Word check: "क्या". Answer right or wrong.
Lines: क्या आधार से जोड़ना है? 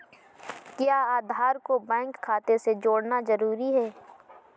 right